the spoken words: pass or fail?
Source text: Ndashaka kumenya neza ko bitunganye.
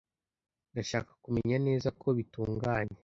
pass